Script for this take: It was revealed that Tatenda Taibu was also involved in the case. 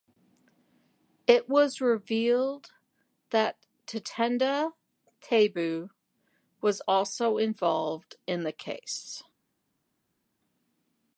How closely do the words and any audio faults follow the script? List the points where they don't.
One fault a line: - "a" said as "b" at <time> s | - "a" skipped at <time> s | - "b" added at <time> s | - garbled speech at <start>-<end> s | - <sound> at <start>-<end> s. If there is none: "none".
none